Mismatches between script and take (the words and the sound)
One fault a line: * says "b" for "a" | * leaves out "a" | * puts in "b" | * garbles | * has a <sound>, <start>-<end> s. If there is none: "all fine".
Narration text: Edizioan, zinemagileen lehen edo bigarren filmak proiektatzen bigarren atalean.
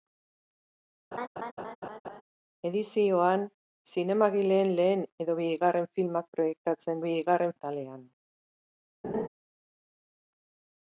* has a laugh, 1.1-2.2 s
* has a laugh, 9.0-9.3 s